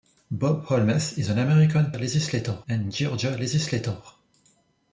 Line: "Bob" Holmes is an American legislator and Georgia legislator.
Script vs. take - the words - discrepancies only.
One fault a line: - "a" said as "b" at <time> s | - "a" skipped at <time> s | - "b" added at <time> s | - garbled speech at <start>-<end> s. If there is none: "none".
none